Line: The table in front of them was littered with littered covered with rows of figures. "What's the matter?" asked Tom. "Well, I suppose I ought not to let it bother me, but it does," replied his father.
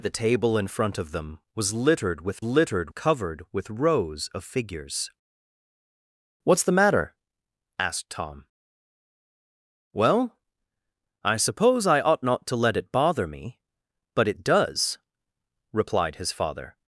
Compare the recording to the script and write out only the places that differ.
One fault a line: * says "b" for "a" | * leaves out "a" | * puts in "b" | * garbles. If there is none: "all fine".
all fine